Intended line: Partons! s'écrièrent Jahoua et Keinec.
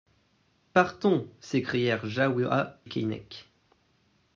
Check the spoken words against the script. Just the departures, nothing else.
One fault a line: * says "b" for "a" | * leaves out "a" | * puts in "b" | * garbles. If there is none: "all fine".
* leaves out "et"